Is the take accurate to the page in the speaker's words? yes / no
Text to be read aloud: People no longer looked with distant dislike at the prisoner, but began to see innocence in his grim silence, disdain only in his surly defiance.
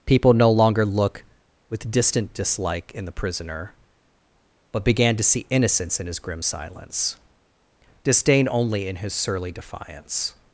no